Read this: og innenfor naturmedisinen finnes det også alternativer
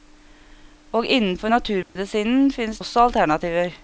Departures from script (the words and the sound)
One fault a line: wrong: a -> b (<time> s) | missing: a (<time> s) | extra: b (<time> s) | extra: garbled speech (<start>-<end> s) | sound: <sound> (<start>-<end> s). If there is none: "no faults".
sound: dropout (1.8-2.0 s)
missing: det (2.8 s)